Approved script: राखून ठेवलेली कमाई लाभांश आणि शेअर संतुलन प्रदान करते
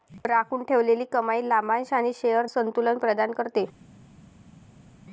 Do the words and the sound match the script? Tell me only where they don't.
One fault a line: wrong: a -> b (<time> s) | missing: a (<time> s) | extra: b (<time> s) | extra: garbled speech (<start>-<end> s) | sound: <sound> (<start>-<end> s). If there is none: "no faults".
no faults